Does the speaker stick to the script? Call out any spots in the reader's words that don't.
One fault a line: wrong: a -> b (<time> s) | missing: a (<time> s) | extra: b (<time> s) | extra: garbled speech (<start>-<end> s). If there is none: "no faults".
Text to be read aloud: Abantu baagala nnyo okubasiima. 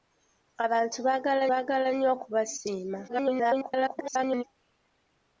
extra: baagala (1.5 s)
extra: garbled speech (3.1-4.4 s)